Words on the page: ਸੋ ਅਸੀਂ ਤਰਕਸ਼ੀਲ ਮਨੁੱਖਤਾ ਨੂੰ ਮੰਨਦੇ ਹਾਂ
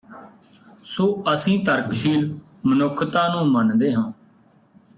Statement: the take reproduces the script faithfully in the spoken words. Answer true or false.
true